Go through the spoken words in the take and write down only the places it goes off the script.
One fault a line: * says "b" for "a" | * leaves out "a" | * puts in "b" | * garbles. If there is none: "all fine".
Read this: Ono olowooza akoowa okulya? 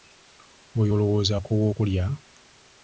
* says "Oyo" for "Ono"